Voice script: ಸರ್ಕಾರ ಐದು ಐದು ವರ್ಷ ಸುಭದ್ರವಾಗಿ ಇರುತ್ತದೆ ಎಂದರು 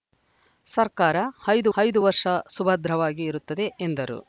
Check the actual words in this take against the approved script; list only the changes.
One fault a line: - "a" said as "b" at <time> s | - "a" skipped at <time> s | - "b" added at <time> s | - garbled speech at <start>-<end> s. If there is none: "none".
none